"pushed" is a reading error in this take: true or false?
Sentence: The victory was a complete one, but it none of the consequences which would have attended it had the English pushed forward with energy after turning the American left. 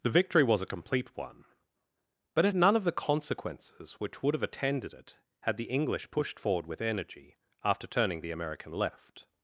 false